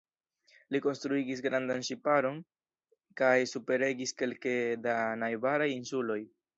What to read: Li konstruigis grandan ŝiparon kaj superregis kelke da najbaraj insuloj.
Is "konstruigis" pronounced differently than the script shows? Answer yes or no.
no